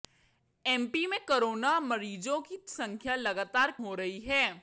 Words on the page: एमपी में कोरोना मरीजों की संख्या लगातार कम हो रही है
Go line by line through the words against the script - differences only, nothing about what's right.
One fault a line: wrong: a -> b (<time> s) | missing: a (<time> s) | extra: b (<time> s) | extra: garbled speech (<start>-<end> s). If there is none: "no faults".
missing: कम (3.7 s)